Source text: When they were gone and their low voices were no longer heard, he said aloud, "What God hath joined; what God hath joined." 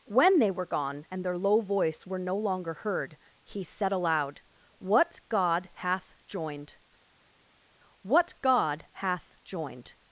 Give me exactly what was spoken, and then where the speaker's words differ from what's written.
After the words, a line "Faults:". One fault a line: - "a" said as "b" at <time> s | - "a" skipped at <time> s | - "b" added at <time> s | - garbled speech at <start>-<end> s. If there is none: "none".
When they were gone and their low voice were no longer heard, he said aloud, "What God hath joined; what God hath joined."
Faults:
- "voices" said as "voice" at 1.6 s